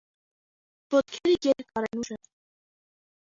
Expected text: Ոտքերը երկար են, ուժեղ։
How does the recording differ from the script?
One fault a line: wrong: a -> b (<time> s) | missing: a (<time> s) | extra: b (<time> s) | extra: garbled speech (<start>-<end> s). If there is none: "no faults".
no faults